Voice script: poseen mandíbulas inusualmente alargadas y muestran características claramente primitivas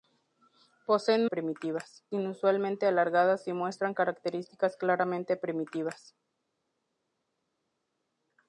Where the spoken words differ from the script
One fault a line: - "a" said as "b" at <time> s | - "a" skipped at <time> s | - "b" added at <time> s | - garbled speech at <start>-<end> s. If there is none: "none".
- "mandíbulas" said as "primitivas" at 1.2 s